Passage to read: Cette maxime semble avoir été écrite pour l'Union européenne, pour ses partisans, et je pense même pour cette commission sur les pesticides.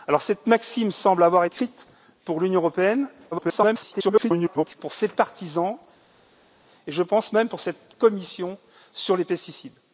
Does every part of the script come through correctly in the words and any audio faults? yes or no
no